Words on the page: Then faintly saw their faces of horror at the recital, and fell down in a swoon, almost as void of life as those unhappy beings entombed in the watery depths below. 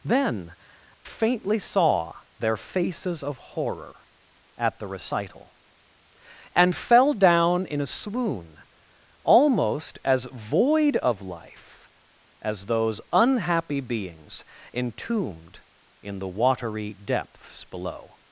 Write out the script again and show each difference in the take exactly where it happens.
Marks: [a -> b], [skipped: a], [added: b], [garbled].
Then faintly saw their faces of horror at the recital, and fell down in a swoon, almost as void of life as those unhappy beings entombed in the watery depths below.